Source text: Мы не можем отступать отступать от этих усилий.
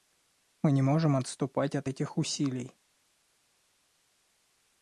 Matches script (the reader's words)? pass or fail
fail